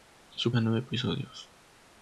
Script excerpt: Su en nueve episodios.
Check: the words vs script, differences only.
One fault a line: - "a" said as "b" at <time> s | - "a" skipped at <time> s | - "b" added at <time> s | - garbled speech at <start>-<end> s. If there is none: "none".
none